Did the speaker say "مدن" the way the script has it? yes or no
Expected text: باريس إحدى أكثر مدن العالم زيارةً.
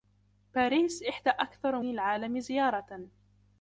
no